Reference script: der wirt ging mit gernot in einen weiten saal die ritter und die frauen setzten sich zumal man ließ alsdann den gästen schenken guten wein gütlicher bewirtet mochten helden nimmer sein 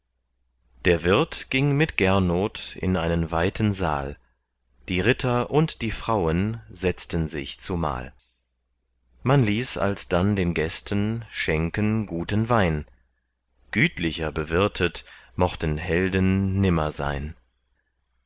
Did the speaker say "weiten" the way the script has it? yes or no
yes